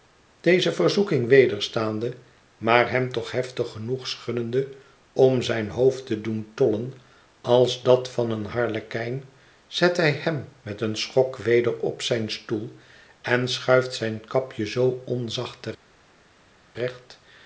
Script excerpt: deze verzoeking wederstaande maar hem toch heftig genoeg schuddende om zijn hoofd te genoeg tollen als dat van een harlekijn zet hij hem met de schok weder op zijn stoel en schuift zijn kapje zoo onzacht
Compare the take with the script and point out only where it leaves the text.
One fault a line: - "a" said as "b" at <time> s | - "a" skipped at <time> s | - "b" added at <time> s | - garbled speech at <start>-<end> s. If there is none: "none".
- "genoeg" said as "doen" at 6.2 s
- "de" said as "een" at 10.8 s